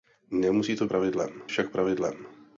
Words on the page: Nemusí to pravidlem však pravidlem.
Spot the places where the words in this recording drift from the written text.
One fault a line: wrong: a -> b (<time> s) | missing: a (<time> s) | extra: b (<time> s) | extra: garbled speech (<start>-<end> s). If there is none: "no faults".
no faults